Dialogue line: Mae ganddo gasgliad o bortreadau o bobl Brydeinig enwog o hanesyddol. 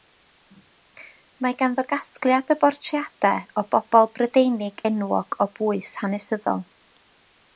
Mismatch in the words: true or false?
true